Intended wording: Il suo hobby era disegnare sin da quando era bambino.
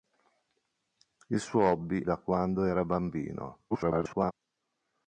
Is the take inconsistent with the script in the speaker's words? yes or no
yes